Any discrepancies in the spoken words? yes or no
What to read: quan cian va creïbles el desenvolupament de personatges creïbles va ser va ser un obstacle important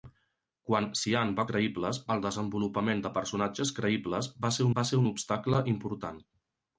no